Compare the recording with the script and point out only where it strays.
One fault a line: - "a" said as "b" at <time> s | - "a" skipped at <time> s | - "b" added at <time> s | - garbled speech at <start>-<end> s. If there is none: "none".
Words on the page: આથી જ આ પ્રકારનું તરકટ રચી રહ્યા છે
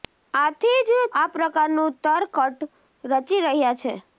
none